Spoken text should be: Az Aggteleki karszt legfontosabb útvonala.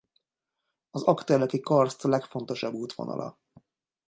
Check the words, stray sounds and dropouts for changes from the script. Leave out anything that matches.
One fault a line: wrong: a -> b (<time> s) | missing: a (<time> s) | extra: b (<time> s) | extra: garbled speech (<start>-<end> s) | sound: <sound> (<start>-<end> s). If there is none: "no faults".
no faults